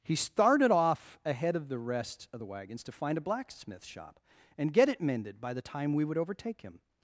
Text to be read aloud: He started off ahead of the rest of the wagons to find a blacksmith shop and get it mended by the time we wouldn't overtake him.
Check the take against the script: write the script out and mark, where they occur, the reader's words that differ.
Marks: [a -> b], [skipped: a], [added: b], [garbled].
He started off ahead of the rest of the wagons to find a blacksmith shop and get it mended by the time we [wouldn't -> would] overtake him.